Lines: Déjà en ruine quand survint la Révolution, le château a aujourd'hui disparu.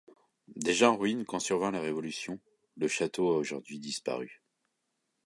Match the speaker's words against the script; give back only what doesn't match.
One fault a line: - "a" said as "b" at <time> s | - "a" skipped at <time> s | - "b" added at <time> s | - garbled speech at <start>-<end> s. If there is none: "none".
none